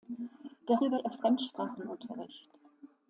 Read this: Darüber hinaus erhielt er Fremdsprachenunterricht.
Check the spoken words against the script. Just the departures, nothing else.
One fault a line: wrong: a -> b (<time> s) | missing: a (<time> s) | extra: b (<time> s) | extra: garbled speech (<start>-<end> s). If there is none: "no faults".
missing: hinaus erhielt (1.0 s)